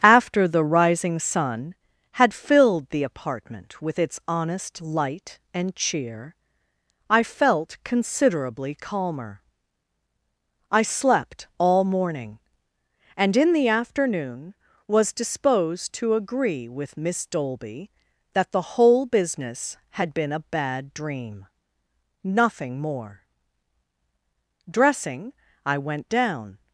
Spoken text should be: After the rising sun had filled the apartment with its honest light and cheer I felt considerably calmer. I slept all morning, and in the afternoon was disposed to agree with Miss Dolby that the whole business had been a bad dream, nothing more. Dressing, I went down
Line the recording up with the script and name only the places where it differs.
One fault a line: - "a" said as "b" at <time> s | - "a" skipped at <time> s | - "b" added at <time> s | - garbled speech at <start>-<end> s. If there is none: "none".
none